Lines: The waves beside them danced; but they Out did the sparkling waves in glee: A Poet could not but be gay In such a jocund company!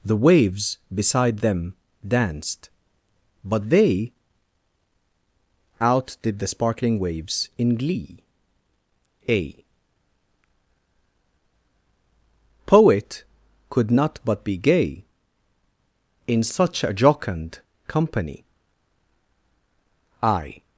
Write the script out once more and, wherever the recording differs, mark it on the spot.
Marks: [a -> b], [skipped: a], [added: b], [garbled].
The waves beside them danced; but they Out did the sparkling waves in glee: A Poet could not but be gay In such a jocund company! [added: I]